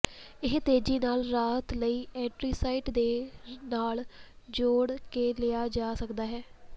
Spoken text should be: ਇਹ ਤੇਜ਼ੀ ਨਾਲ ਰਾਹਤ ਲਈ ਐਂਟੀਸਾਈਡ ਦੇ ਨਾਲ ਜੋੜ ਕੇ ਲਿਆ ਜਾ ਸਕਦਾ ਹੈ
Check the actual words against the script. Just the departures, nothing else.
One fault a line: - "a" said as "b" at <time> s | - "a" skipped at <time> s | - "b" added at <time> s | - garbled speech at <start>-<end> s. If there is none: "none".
none